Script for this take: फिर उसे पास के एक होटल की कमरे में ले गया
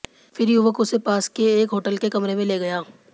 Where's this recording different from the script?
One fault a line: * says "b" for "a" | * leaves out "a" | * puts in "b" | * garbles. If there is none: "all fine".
* puts in "युवक"
* says "के" for "की"